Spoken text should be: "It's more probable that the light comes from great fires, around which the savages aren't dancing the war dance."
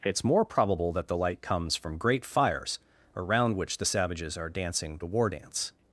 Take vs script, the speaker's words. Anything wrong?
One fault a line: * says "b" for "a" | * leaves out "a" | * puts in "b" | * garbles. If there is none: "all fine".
* says "are" for "aren't"